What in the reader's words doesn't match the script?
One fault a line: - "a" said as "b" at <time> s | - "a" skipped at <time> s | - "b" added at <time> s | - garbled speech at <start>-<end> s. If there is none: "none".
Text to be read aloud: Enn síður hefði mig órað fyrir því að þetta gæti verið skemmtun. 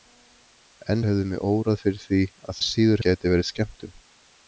- "síður" skipped at 1.0 s
- "þetta" said as "síður" at 2.7 s